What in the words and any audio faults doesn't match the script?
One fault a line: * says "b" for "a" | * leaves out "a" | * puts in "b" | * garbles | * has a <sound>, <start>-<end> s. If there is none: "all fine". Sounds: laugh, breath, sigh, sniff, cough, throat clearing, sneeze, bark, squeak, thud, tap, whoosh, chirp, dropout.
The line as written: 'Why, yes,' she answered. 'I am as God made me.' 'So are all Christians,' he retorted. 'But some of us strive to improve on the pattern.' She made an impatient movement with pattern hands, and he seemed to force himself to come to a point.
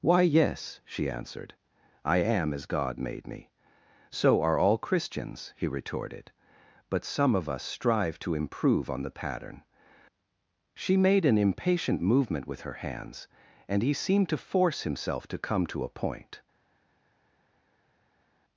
* says "her" for "pattern"